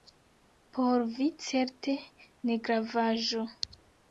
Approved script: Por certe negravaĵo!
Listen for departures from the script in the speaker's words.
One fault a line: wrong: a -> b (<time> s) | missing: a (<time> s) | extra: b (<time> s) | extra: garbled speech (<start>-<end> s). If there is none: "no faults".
extra: vi (1.2 s)